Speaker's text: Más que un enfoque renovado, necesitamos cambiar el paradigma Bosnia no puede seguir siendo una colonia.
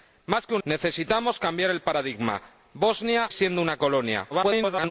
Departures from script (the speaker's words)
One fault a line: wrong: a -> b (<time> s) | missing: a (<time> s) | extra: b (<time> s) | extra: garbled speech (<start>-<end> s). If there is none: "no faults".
missing: enfoque renovado (0.6 s)
missing: no puede seguir (3.3 s)
extra: garbled speech (4.3-4.9 s)